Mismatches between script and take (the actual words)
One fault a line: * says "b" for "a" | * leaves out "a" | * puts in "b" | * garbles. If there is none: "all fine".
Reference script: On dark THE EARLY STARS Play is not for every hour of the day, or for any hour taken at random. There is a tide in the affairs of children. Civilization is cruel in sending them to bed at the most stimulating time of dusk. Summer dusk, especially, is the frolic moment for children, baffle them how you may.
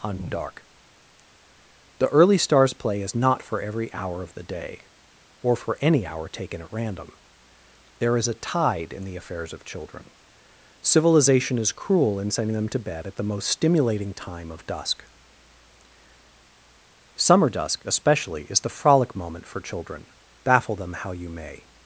all fine